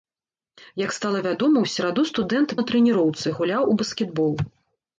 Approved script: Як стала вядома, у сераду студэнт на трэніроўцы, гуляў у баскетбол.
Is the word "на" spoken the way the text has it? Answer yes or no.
yes